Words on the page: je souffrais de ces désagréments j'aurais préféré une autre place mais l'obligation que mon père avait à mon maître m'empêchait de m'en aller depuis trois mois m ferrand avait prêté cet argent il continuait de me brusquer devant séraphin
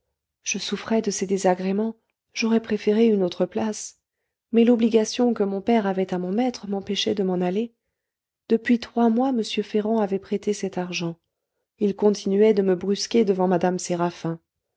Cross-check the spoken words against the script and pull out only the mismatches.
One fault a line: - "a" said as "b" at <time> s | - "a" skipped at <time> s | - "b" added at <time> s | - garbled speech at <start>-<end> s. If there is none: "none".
- "mme" added at 13.5 s